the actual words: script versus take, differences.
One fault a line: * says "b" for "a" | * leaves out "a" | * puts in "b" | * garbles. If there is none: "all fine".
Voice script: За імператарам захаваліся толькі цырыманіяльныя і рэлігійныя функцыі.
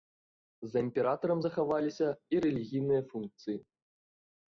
* leaves out "толькі цырыманіяльныя"